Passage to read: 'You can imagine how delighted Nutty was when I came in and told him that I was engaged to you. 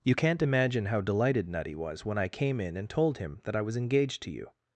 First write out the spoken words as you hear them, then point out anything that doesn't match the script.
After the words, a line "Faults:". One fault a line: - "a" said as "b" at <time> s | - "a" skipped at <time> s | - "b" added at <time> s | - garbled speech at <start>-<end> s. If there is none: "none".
'You can't imagine how delighted Nutty was when I came in and told him that I was engaged to you.
Faults:
- "can" said as "can't" at 0.1 s